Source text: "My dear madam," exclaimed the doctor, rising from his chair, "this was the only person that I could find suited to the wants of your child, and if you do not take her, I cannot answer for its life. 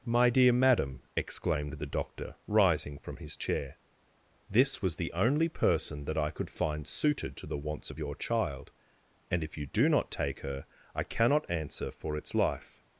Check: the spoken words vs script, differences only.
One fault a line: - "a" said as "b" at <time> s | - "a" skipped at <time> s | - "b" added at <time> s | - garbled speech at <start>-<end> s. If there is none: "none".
none